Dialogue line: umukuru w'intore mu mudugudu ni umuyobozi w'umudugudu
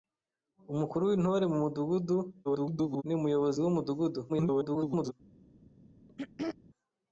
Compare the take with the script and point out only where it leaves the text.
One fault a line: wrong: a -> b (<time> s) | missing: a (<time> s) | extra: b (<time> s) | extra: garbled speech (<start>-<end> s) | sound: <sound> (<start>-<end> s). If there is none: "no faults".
extra: garbled speech (2.4-3.0 s)
extra: garbled speech (4.3-5.1 s)
sound: throat clearing (6.1-6.6 s)